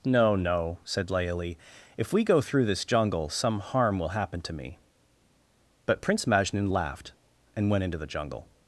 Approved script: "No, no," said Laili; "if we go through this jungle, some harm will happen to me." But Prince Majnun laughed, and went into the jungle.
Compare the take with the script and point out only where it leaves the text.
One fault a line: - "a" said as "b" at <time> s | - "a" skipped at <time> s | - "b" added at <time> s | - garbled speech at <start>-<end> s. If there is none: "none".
none